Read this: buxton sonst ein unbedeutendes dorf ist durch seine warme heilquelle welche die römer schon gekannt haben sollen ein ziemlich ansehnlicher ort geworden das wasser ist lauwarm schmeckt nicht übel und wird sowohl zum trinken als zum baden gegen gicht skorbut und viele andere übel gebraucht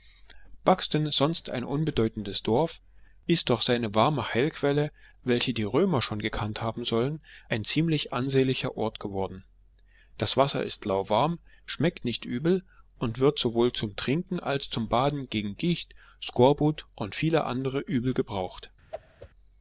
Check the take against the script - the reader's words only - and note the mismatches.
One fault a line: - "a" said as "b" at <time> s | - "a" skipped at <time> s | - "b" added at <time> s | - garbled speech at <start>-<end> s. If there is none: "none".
none